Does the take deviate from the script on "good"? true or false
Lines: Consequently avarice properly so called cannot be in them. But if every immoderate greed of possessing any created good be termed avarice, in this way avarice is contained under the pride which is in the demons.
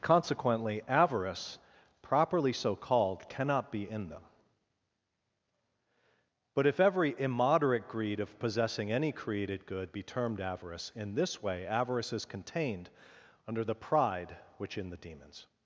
false